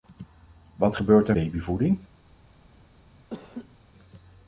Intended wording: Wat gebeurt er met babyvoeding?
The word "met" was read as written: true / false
false